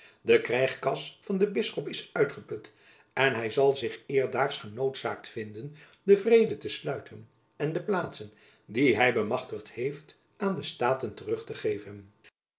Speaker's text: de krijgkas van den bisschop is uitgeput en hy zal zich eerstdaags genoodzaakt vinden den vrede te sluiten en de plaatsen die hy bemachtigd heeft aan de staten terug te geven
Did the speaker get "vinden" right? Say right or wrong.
right